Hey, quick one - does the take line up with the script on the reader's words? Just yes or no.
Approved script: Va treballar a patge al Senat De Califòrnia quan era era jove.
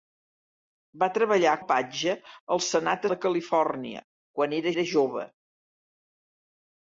yes